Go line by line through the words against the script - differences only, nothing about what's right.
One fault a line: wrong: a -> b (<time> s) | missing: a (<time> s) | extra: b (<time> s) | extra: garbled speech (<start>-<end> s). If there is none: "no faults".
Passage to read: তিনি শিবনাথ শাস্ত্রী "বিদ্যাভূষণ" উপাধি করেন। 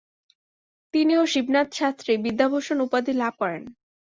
extra: ও (1.2 s)
extra: লাভ (3.1 s)